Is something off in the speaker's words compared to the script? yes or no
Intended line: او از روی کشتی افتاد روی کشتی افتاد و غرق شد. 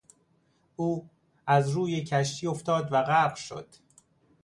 yes